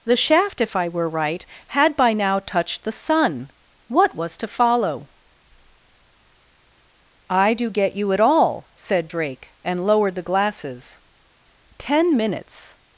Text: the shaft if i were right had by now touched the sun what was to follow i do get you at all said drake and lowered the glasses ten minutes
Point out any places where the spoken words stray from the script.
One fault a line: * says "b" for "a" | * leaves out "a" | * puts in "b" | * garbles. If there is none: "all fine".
all fine